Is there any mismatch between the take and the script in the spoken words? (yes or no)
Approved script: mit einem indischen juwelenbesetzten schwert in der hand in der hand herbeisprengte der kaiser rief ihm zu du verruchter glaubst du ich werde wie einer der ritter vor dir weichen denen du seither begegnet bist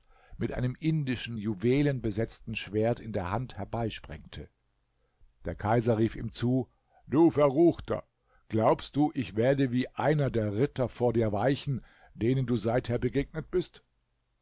yes